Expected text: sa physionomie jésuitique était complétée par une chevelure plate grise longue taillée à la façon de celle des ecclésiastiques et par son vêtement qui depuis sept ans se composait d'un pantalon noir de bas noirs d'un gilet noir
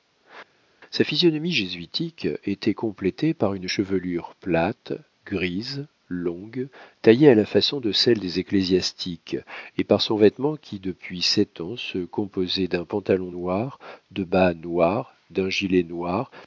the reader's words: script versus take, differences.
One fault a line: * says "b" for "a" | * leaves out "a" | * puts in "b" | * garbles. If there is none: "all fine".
all fine